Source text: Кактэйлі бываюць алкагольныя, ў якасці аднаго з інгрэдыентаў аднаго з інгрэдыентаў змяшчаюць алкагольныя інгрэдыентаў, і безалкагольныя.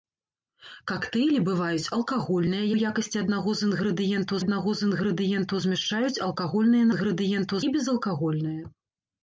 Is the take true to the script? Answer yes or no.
yes